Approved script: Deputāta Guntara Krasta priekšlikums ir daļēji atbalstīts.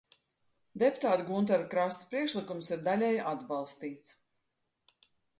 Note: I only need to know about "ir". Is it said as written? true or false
true